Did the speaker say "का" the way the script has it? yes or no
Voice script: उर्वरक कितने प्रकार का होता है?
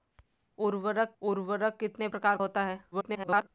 no